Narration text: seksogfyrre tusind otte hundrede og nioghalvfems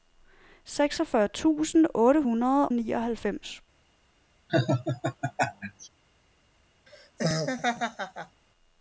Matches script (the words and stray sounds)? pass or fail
fail